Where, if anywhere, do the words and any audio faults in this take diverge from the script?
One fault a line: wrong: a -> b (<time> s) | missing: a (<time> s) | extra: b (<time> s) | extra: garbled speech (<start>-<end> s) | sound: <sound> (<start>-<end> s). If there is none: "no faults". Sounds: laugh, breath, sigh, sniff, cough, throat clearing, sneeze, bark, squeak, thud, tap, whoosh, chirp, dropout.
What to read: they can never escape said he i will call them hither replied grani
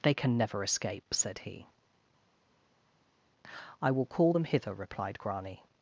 no faults